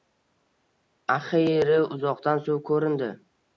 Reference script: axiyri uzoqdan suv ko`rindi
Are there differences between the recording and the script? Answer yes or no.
no